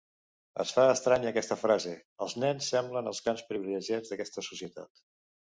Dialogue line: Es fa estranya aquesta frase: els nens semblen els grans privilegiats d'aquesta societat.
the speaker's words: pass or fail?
pass